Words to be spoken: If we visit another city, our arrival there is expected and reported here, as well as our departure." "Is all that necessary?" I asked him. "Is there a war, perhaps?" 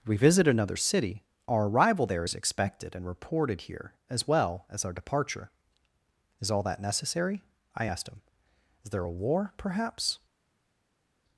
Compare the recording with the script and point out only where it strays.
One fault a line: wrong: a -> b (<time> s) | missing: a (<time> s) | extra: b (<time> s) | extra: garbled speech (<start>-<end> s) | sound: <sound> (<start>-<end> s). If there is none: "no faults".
missing: If (0.1 s)